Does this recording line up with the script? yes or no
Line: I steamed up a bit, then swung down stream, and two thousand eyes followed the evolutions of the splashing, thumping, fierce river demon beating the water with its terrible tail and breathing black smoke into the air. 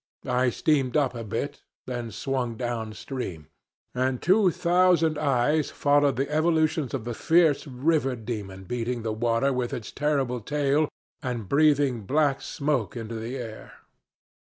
no